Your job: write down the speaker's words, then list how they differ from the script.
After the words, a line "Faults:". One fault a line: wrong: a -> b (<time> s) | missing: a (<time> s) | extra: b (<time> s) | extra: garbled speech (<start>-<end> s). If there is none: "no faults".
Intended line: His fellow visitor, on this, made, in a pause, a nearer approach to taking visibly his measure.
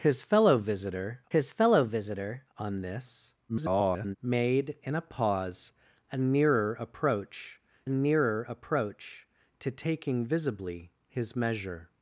His fellow visitor his fellow visitor, on this, [garbled] made, in a pause, a nearer approach nearer approach to taking visibly his measure.
Faults:
extra: his fellow visitor (1.3 s)
extra: garbled speech (3.5-4.2 s)
extra: nearer approach (7.9 s)